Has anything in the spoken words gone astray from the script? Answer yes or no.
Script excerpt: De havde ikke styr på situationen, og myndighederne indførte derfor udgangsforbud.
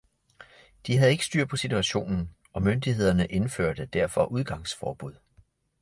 no